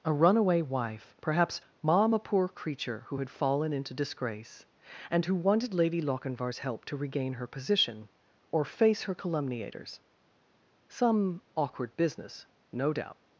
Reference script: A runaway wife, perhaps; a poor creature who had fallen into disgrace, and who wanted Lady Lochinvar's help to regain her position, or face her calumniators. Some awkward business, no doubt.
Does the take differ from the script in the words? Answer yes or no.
yes